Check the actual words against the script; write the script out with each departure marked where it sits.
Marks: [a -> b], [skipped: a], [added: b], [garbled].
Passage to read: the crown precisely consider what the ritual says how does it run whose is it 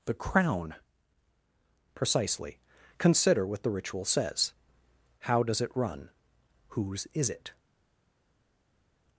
the crown precisely consider what the ritual says how does it run whose is it